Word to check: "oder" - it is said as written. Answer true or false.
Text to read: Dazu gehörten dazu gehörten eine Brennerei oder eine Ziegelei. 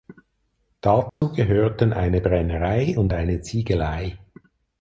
false